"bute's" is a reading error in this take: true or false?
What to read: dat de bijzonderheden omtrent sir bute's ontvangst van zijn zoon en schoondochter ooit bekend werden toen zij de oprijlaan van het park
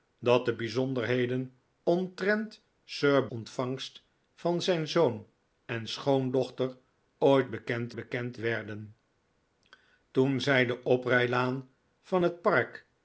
true